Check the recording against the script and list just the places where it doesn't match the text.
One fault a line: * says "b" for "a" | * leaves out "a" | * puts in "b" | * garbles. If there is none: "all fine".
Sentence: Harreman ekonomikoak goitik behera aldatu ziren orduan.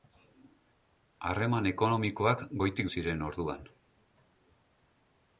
* leaves out "behera aldatu"